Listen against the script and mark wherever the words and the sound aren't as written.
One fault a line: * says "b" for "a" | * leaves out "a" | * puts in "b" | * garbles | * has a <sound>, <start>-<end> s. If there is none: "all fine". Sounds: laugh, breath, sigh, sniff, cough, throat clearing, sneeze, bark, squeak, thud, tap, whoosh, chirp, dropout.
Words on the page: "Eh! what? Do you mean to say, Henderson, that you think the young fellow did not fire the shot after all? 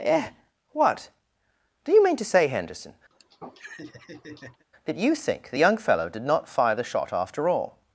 * has a laugh, 3.1-4.6 s